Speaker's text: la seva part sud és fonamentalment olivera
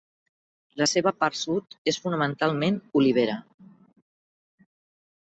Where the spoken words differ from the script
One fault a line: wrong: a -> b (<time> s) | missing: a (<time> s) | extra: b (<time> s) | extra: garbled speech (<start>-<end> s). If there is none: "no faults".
no faults